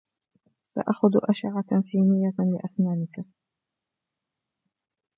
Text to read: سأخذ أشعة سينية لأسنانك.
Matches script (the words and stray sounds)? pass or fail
pass